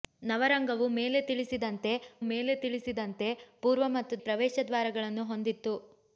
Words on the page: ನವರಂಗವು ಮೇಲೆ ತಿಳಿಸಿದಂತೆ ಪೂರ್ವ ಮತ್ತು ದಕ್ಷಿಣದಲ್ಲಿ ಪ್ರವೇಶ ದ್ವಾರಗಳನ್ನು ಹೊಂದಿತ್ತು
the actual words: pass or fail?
fail